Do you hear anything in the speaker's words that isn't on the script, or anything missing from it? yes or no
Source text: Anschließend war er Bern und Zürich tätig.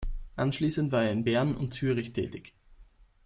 yes